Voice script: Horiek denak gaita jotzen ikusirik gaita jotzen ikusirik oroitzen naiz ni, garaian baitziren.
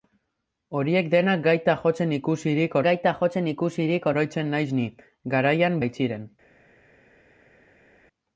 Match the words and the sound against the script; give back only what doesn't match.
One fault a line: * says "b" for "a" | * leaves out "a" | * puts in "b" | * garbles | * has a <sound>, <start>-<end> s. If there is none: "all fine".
all fine